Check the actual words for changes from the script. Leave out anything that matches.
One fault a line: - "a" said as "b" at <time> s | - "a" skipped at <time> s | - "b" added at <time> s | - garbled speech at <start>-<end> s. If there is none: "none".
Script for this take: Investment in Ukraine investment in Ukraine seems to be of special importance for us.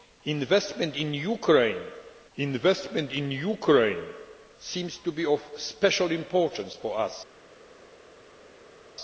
none